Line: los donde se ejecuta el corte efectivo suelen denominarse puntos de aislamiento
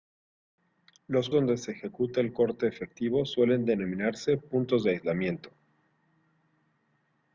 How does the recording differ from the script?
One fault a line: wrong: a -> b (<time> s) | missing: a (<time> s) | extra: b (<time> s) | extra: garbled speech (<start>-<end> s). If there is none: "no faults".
no faults